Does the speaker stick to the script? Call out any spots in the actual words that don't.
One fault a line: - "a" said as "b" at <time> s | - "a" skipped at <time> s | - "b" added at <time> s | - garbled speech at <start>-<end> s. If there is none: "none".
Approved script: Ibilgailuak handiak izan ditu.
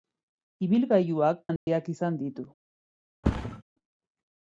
none